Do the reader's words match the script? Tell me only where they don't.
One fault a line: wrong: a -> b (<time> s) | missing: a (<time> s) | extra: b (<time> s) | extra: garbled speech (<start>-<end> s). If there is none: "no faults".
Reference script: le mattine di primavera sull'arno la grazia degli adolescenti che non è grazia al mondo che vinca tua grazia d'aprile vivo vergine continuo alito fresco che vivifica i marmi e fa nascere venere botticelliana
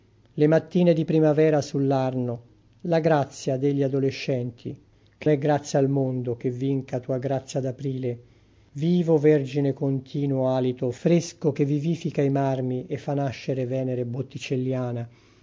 missing: non (5.3 s)